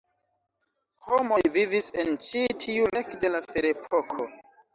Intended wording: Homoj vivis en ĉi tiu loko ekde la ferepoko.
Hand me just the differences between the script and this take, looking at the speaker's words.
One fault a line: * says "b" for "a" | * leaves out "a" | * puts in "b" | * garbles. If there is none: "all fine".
* leaves out "loko"